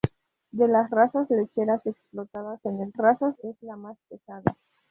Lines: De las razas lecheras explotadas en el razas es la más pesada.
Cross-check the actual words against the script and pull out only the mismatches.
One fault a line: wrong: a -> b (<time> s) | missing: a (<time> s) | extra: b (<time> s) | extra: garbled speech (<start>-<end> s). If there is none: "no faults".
no faults